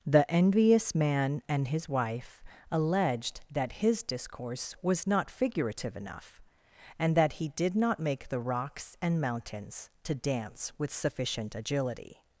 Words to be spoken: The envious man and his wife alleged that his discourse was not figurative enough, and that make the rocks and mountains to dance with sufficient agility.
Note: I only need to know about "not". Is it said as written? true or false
true